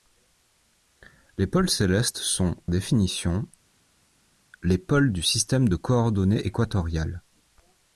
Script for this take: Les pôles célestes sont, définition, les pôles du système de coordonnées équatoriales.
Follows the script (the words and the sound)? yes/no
yes